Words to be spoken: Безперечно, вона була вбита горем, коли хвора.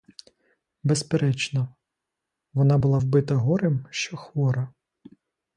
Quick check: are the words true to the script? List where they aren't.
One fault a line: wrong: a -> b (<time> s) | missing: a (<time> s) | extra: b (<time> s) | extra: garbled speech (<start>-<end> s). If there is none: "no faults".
wrong: коли -> що (3.9 s)